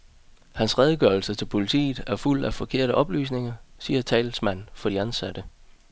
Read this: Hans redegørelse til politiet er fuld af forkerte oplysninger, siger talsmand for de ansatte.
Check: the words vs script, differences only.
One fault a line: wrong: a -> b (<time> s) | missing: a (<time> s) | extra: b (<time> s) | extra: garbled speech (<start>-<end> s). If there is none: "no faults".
no faults